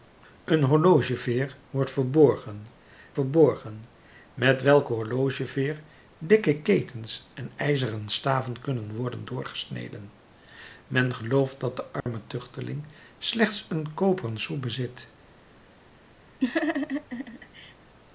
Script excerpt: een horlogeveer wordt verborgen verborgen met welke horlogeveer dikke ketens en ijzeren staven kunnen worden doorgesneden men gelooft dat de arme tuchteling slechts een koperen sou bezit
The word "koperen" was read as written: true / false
true